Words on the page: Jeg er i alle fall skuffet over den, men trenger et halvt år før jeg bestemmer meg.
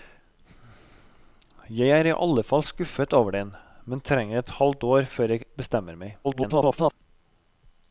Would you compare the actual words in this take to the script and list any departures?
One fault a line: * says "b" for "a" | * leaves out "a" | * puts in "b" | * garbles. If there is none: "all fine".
* garbles